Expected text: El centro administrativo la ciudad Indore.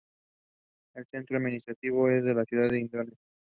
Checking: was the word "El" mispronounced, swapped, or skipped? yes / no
no